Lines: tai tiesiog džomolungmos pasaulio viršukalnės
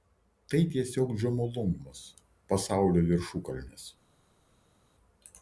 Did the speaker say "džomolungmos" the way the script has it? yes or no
yes